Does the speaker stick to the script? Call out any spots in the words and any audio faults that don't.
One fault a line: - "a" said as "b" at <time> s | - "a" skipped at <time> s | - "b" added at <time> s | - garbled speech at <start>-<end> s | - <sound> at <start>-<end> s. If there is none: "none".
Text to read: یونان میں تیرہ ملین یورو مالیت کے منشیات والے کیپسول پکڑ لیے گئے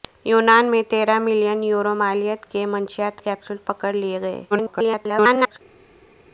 - "والے" skipped at 3.2 s
- garbled speech at 4.5-5.6 s